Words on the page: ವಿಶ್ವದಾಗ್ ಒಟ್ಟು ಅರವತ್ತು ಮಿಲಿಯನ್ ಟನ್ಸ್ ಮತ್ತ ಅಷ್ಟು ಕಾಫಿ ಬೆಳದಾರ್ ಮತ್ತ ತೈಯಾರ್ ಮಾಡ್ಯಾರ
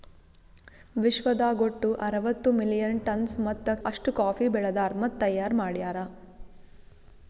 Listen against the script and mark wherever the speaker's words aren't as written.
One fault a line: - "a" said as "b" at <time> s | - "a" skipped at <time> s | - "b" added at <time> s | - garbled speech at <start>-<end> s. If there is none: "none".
none